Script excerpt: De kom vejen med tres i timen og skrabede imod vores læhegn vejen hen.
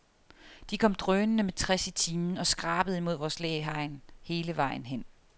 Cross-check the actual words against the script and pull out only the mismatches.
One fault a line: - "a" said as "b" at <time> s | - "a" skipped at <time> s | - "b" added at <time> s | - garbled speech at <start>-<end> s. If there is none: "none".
- "vejen" said as "drønende" at 0.9 s
- "hele" added at 4.2 s